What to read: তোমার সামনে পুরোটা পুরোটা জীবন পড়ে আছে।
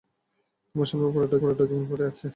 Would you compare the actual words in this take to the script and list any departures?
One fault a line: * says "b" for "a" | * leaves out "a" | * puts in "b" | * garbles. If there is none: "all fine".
all fine